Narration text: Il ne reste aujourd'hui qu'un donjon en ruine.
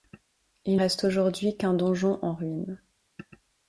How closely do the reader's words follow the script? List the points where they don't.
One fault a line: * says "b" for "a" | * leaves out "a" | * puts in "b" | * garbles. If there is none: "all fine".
* leaves out "ne"